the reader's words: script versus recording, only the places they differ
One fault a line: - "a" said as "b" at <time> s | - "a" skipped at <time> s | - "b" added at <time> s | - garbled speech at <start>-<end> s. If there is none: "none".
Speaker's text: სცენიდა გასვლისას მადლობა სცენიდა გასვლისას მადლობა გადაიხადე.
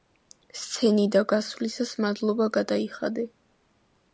- "სცენიდა გასვლისას მადლობა" skipped at 2.5 s